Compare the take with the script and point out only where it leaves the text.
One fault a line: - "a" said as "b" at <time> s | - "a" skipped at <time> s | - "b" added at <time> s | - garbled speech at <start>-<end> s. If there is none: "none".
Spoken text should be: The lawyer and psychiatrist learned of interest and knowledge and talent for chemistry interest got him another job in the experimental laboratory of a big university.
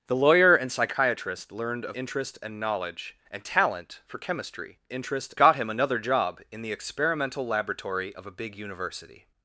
none